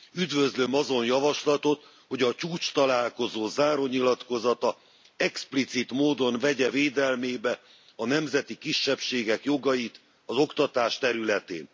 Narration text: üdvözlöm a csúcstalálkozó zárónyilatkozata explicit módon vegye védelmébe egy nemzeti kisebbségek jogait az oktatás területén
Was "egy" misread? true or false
true